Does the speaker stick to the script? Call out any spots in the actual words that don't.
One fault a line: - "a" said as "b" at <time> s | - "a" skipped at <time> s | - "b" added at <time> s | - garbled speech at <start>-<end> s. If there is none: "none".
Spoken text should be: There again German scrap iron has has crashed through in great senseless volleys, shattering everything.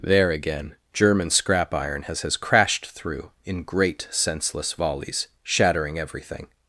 none